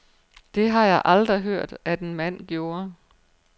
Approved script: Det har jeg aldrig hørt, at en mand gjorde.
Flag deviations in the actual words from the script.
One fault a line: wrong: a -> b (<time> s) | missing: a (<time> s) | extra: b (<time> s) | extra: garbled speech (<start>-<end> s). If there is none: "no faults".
no faults